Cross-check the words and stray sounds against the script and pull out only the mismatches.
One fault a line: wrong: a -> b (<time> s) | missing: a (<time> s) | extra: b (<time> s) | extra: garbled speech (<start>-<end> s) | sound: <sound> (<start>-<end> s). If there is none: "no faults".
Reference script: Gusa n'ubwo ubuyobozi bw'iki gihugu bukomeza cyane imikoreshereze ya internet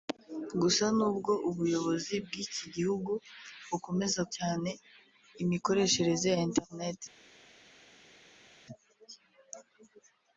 no faults